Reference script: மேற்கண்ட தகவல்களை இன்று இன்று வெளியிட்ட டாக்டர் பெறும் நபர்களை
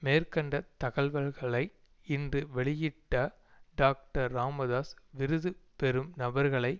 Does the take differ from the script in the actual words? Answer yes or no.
yes